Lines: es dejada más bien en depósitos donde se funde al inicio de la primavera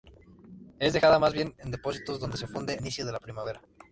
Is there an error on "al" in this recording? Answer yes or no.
yes